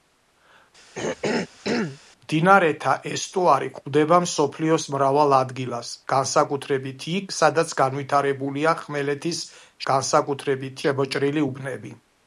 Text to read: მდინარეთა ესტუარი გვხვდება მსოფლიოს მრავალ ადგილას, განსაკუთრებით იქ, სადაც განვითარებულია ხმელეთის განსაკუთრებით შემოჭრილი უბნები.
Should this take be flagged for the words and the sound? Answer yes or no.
yes